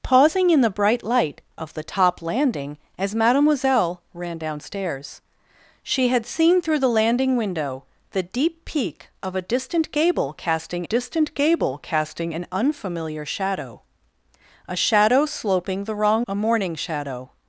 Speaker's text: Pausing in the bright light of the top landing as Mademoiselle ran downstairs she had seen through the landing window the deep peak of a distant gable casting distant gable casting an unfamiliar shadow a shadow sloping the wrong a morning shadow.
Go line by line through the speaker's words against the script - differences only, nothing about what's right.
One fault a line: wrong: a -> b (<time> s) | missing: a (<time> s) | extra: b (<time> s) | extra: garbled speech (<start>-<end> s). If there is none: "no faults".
no faults